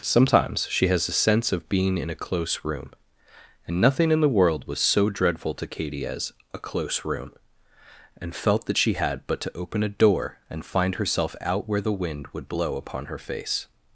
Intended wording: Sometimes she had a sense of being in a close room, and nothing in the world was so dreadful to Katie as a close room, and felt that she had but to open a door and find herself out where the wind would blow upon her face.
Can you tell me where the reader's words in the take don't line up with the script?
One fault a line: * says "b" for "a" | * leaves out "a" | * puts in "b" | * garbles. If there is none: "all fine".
* says "has" for "had"